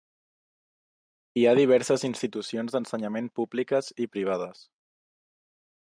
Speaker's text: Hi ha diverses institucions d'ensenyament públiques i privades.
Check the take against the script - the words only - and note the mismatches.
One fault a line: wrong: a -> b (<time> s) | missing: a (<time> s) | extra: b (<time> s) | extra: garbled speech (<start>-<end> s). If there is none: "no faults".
no faults